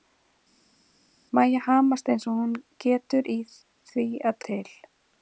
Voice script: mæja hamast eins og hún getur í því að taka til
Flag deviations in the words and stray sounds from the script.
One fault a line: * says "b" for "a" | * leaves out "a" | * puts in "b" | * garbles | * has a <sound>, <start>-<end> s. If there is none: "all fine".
* leaves out "taka"